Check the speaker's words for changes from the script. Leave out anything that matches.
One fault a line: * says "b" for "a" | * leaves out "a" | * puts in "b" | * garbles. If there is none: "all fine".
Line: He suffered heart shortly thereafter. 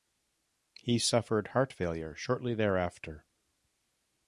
* puts in "failure"